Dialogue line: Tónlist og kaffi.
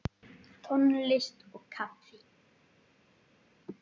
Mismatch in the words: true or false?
false